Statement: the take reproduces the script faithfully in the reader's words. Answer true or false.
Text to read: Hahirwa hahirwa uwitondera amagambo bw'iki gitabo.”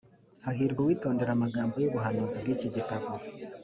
false